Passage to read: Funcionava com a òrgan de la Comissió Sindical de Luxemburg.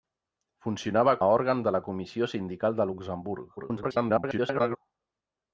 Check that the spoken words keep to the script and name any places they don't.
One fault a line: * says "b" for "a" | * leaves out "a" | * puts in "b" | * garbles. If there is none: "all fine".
* leaves out "com"
* garbles